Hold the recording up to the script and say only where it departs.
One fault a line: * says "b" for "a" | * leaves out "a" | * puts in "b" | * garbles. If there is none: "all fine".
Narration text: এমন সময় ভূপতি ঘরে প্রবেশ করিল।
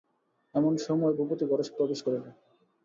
all fine